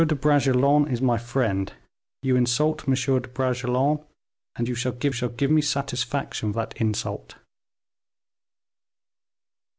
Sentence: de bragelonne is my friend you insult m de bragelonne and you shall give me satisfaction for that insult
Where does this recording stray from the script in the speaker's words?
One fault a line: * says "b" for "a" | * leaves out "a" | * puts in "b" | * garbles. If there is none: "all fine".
* puts in "shall give"
* leaves out "for"